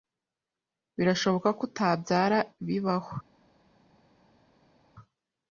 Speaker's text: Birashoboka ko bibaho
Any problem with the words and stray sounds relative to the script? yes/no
yes